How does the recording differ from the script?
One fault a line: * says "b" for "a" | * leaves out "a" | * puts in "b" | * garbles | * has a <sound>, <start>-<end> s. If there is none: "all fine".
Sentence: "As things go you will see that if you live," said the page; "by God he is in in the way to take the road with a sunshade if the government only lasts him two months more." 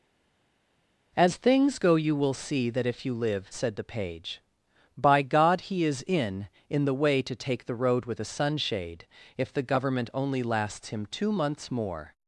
all fine